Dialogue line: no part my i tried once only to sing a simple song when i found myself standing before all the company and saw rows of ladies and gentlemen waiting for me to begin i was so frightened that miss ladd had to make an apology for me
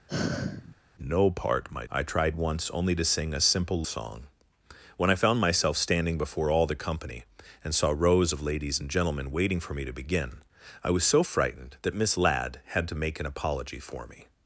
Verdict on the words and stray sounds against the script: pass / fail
fail